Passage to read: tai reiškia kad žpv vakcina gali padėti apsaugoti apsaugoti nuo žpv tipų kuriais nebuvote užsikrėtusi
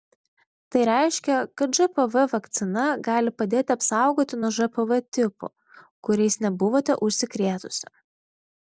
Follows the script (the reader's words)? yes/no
no